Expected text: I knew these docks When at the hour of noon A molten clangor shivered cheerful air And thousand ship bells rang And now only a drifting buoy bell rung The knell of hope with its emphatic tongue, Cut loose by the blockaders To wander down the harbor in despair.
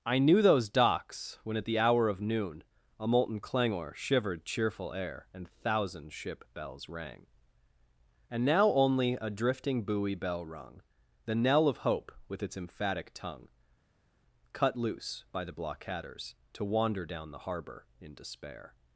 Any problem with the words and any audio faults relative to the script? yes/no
yes